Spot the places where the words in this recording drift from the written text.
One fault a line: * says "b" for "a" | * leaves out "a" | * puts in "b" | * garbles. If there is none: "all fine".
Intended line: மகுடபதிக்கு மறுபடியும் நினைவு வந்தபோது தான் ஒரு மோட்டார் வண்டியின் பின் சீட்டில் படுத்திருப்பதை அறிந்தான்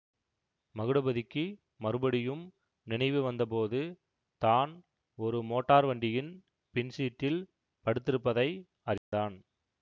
all fine